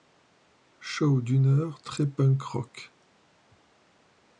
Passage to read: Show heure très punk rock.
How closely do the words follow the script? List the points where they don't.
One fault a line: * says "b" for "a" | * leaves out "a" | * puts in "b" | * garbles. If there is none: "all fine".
* puts in "d'une"